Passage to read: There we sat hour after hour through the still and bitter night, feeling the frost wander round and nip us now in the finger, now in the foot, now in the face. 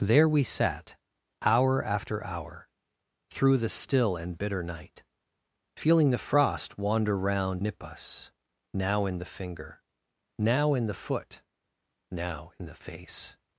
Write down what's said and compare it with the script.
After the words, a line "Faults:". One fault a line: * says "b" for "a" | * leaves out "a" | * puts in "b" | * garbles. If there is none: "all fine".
There we sat hour after hour through the still and bitter night, feeling the frost wander round nip us now in the finger, now in the foot, now in the face.
Faults:
* leaves out "and"